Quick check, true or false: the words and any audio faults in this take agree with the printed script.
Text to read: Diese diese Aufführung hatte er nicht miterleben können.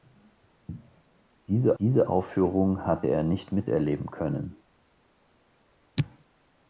true